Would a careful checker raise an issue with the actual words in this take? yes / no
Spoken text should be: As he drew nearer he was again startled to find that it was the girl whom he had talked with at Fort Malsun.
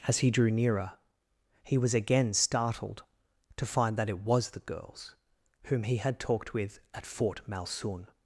yes